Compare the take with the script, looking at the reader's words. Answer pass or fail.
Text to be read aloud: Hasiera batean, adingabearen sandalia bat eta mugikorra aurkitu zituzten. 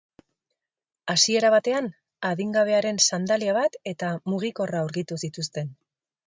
pass